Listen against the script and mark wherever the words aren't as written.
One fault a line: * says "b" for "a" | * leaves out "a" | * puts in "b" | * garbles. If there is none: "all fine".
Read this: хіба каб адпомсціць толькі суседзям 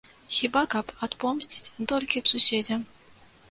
all fine